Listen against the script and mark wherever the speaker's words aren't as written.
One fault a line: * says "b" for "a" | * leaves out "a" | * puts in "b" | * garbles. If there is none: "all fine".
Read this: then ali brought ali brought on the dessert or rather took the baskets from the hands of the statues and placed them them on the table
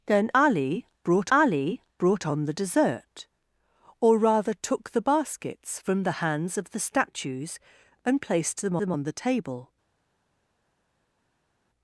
all fine